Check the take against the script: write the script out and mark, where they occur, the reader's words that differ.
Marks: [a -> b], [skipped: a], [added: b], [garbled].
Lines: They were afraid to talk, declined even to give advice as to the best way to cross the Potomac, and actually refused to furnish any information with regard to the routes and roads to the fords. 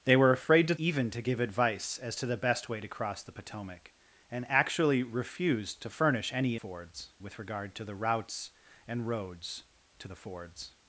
They were afraid to [skipped: talk, declined] even to give advice as to the best way to cross the Potomac, and actually refused to furnish any [information -> fords] with regard to the routes and roads to the fords.